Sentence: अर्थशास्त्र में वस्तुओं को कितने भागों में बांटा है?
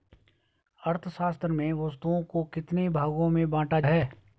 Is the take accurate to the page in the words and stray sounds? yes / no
yes